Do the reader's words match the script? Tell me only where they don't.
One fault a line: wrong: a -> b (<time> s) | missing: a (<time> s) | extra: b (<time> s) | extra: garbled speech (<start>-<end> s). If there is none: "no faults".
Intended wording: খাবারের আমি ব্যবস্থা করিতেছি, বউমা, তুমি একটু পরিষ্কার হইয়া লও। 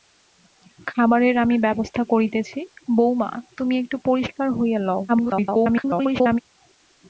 extra: garbled speech (5.1-6.4 s)